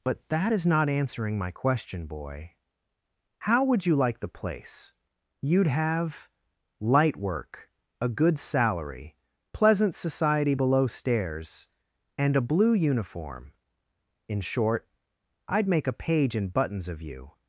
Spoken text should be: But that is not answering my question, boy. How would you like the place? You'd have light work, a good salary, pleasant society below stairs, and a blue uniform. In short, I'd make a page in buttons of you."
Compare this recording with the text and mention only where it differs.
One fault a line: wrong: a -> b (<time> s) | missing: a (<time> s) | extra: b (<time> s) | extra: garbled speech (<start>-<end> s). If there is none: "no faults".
no faults